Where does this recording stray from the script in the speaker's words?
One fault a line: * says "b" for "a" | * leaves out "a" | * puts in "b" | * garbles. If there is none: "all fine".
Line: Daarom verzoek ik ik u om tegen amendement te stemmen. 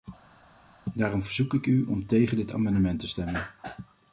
* leaves out "ik"
* puts in "dit"